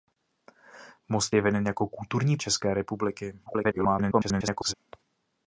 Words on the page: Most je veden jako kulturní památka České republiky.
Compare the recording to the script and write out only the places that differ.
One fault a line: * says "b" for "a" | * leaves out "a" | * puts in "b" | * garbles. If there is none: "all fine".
* leaves out "památka"
* garbles